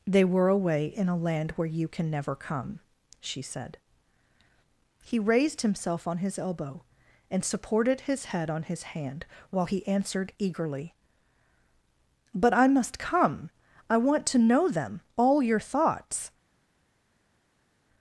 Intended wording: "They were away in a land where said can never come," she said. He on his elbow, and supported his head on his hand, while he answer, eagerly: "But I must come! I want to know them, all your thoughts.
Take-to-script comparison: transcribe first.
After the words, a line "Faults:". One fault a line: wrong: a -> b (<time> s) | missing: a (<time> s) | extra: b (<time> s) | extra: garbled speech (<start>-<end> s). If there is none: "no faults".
"They were away in a land where you can never come," she said. He raised himself on his elbow, and supported his head on his hand, while he answered, eagerly: "But I must come! I want to know them, all your thoughts.
Faults:
wrong: said -> you (1.7 s)
extra: raised himself (5.2 s)
wrong: answer -> answered (9.9 s)